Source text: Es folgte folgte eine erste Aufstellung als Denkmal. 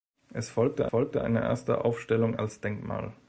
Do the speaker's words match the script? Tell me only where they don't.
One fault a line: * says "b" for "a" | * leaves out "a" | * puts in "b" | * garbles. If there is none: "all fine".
all fine